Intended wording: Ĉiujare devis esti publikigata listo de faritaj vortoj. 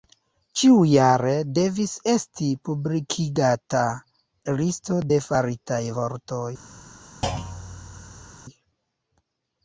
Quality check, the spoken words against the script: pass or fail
pass